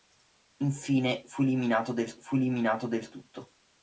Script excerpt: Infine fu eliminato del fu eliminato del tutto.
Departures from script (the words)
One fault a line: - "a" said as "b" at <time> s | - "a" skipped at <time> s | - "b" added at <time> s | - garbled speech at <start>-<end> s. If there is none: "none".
none